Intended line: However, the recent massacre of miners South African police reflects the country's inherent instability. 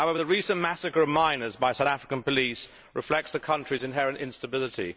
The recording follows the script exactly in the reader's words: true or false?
false